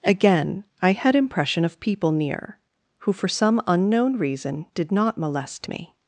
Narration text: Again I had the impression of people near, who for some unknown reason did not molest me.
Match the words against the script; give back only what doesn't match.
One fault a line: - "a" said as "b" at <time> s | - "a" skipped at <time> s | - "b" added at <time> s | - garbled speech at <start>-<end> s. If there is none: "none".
- "the" skipped at 1.1 s